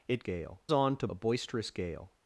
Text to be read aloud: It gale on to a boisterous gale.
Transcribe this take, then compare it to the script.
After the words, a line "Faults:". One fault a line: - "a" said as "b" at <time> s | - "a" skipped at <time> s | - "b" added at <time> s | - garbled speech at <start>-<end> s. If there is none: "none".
It gale on to a boisterous gale.
Faults:
none